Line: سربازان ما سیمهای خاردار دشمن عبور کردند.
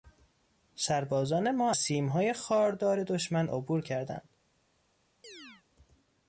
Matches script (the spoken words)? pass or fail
pass